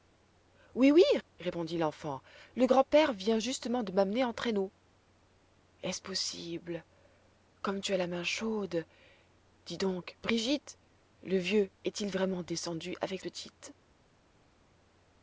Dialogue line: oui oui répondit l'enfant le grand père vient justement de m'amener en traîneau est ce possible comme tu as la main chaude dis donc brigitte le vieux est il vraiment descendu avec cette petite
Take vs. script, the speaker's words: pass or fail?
fail